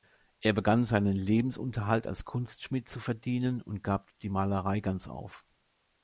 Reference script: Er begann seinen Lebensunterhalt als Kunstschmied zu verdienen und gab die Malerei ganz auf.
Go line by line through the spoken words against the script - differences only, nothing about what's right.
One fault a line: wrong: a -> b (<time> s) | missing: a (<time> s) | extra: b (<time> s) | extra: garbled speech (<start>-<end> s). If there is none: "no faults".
no faults